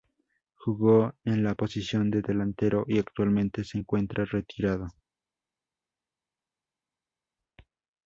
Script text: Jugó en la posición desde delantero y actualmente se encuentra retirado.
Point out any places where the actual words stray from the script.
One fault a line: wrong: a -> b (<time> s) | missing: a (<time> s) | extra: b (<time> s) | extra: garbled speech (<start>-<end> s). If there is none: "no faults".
wrong: desde -> de (2.1 s)